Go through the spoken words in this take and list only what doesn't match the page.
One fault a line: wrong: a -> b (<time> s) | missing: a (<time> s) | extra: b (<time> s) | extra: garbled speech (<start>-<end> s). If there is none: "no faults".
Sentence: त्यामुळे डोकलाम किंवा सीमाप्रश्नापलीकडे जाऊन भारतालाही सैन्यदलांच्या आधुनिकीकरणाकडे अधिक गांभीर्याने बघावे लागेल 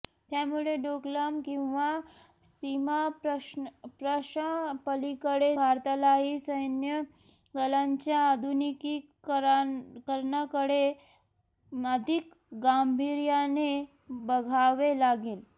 missing: जाऊन (3.6 s)